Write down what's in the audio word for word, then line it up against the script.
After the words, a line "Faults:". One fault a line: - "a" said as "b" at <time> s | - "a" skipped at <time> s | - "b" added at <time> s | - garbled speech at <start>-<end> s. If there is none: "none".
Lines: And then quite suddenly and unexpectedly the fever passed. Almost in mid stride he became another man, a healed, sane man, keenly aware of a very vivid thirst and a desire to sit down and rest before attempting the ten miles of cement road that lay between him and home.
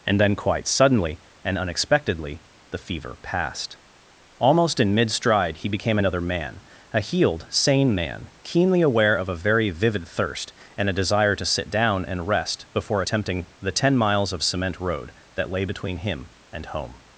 And then quite suddenly and unexpectedly the fever passed. Almost in mid stride he became another man, a healed, sane man, keenly aware of a very vivid thirst and a desire to sit down and rest before attempting the ten miles of cement road that lay between him and home.
Faults:
none